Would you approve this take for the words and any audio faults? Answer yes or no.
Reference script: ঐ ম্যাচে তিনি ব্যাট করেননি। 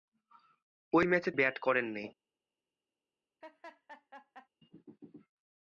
no